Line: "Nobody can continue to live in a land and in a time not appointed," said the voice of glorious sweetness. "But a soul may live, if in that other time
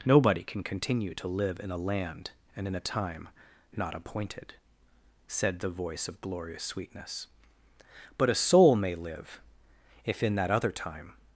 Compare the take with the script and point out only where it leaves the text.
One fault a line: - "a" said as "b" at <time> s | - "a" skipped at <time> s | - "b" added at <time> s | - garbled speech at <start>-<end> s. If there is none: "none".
none